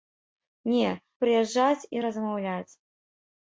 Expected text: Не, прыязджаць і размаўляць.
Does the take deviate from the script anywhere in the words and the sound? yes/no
no